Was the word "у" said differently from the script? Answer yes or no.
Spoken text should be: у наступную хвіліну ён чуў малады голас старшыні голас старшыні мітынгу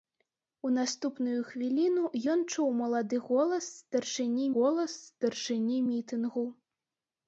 no